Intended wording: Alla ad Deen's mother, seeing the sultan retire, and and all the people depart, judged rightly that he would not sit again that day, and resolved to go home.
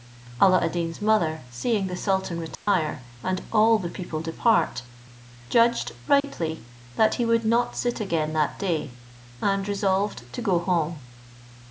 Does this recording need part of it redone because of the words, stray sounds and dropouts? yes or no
yes